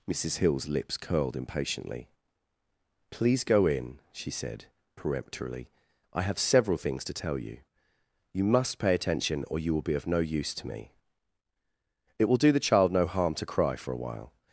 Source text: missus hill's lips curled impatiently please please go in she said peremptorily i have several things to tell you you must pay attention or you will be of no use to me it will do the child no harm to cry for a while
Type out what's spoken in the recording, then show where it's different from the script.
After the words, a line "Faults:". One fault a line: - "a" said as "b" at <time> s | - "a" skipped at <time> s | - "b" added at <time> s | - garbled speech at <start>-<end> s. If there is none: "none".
missus hill's lips curled impatiently please go in she said peremptorily i have several things to tell you you must pay attention or you will be of no use to me it will do the child no harm to cry for a while
Faults:
- "please" skipped at 3.4 s